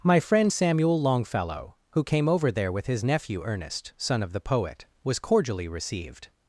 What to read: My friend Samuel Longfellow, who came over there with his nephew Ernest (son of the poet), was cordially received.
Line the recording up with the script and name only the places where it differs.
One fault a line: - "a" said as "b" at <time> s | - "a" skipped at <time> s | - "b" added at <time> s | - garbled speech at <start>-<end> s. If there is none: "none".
none